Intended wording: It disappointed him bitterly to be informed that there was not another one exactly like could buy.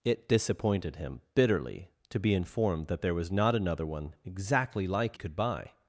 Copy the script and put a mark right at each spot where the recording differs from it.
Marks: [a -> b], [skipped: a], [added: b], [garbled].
It disappointed him bitterly to be informed that there was not another one exactly like could buy.